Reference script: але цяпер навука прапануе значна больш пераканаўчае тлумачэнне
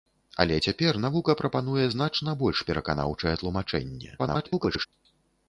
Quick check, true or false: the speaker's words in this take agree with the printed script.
false